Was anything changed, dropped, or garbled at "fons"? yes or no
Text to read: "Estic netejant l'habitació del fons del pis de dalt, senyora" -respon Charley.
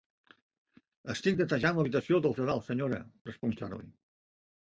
yes